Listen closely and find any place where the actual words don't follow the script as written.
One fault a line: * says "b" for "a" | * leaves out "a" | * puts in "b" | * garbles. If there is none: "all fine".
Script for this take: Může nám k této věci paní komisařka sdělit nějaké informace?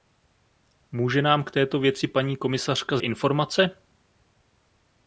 * leaves out "sdělit nějaké"